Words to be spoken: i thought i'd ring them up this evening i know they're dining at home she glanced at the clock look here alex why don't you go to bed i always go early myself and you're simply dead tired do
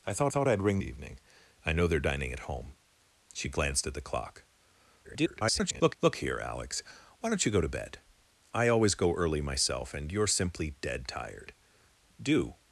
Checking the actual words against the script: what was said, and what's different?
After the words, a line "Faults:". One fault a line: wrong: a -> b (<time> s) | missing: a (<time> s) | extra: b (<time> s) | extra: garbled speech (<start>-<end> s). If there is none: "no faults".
i thought thought i'd ring evening i know they're dining at home she glanced at the clock [garbled] look here alex why don't you go to bed i always go early myself and you're simply dead tired do
Faults:
extra: thought (0.3 s)
missing: them up this (0.8 s)
extra: garbled speech (5.0-6.0 s)